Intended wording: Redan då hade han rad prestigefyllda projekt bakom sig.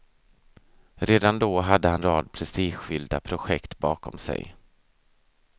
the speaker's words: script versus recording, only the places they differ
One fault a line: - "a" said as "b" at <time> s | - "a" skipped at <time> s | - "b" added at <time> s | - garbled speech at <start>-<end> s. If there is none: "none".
none